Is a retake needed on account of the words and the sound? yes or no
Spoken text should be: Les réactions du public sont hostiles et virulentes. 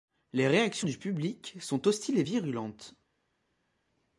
no